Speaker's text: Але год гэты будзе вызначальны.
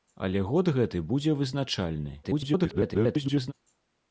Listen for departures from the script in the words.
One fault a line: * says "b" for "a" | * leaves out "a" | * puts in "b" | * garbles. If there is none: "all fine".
* garbles